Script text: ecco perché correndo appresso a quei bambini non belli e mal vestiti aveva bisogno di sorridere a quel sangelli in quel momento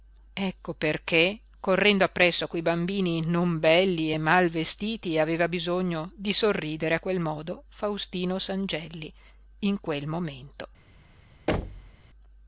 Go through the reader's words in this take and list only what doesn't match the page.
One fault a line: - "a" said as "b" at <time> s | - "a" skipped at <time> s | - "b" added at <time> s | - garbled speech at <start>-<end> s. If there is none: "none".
- "modo faustino" added at 7.2 s